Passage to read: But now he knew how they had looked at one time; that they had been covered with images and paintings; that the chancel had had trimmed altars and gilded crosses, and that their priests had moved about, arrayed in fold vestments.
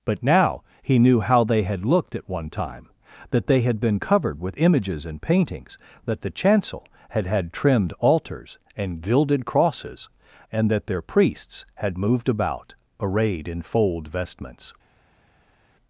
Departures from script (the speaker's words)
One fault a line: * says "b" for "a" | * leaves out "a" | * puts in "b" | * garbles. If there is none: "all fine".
all fine